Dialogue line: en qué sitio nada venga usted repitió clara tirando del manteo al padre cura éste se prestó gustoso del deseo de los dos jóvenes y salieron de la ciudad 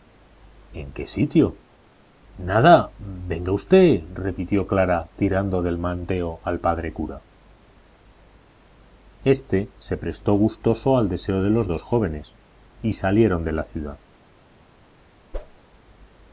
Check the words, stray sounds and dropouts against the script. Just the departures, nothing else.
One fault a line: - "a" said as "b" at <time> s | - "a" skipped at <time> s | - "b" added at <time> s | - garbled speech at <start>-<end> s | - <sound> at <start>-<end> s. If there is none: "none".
- "del" said as "al" at 11.0 s
- whoosh at 15.3-15.6 s